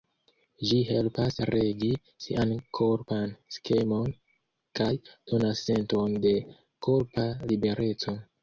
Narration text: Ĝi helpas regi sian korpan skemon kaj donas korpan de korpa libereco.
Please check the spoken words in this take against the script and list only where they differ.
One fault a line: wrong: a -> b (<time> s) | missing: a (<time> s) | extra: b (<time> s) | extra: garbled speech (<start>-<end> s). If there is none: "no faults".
wrong: korpan -> senton (5.7 s)